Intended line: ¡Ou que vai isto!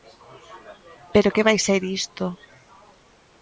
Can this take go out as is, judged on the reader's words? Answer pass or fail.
fail